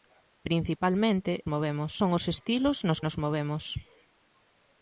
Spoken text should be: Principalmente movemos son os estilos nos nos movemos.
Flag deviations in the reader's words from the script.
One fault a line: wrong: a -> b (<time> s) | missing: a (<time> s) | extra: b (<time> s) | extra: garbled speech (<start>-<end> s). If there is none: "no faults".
no faults